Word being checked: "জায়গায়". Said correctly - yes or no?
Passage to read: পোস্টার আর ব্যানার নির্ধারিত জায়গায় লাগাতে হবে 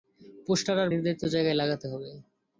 yes